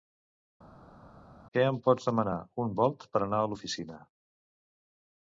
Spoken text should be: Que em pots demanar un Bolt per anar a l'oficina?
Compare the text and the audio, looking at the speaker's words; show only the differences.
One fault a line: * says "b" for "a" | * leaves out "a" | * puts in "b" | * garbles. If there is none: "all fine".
all fine